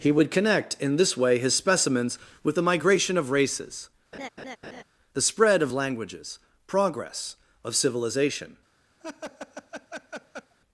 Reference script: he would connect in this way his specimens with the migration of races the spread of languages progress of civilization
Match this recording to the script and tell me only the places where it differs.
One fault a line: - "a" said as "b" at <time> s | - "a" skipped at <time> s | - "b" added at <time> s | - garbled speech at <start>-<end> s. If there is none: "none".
none